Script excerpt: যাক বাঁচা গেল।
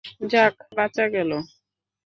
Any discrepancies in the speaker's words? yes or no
no